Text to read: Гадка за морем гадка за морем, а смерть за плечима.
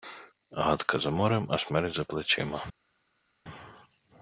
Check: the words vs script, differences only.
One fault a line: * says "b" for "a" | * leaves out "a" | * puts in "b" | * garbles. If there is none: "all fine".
* leaves out "гадка за морем"